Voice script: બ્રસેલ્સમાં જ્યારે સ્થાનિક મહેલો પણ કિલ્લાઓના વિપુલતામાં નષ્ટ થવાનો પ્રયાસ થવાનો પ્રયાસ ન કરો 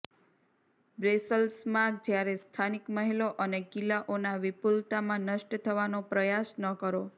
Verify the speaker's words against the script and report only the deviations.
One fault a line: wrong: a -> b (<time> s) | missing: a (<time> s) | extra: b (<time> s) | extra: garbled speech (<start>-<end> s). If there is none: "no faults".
wrong: પણ -> અને (3.5 s)
missing: થવાનો પ્રયાસ (6.6 s)